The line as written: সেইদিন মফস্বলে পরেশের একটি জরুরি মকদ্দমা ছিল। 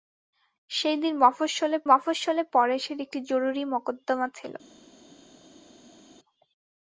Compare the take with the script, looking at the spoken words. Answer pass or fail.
fail